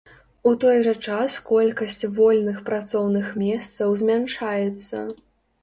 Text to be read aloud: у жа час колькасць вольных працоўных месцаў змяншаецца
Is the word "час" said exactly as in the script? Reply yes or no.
yes